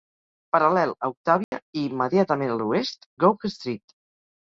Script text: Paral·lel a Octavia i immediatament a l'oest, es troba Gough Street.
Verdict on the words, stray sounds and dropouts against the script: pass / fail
fail